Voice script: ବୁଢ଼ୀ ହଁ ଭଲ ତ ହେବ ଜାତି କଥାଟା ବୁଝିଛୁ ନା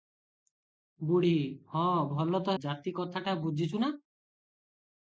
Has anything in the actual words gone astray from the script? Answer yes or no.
yes